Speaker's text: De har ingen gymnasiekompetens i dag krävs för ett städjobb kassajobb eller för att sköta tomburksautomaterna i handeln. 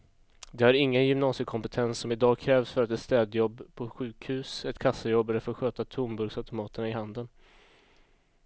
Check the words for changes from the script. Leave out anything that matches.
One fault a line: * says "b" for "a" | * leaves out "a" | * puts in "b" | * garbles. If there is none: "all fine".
* puts in "som"
* puts in "på sjukhus ett"